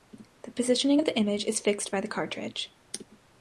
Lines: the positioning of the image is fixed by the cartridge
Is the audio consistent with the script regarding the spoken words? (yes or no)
yes